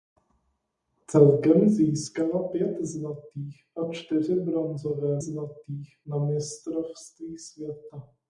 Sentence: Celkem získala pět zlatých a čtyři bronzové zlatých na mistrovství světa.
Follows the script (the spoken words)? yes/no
yes